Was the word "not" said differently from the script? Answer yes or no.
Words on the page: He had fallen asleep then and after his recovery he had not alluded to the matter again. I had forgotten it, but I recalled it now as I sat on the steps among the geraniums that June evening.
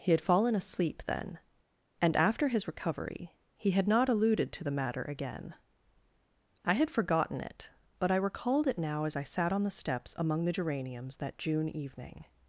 no